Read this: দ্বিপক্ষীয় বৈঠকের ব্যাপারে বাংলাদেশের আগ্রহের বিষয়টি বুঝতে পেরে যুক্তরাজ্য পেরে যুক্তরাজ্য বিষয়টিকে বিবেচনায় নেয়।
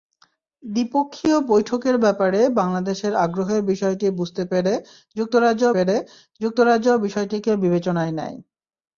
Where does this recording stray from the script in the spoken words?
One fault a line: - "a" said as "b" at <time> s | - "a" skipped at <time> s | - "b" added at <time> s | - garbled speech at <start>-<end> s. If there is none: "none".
none